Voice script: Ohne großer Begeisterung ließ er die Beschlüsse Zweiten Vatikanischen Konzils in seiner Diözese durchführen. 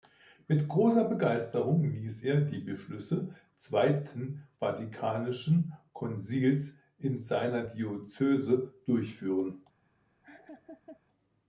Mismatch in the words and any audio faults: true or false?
true